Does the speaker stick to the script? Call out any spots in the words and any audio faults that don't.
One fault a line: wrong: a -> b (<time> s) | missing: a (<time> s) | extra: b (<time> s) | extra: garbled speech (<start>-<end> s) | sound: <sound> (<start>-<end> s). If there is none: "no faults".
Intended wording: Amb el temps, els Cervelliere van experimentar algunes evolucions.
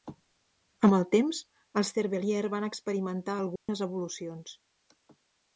sound: dropout (3.6-3.7 s)